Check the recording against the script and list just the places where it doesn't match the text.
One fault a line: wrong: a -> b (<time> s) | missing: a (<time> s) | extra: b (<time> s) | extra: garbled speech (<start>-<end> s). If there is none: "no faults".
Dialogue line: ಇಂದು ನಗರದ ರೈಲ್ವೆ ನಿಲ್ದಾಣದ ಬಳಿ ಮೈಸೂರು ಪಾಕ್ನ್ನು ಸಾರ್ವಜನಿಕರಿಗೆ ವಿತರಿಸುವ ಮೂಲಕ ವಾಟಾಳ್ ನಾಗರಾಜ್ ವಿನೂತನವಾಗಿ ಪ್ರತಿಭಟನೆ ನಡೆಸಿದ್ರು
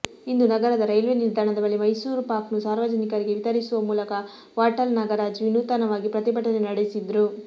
no faults